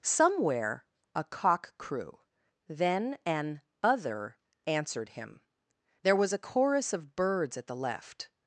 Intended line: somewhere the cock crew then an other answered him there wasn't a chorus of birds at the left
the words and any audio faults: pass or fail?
fail